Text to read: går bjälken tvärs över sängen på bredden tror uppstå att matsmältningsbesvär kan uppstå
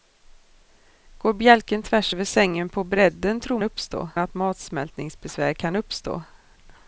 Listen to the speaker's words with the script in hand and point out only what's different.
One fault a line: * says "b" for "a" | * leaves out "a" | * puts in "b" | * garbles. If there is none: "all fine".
all fine